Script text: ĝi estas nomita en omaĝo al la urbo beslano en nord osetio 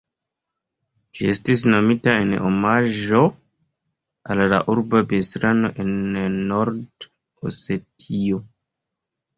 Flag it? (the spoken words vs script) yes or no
yes